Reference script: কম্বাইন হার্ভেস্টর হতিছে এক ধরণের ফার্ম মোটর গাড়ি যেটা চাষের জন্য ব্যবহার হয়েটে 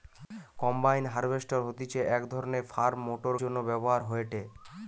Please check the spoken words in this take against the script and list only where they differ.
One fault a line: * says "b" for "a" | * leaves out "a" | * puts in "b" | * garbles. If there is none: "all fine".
* leaves out "গাড়ি যেটা চাষের"